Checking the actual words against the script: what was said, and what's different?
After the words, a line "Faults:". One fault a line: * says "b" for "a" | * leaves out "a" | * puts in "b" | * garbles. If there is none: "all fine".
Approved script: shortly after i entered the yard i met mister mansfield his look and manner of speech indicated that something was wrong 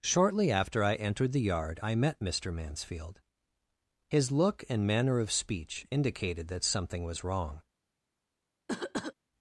shortly after i entered the yard i met mister mansfield his look and manner of speech indicated that something was wrong
Faults:
all fine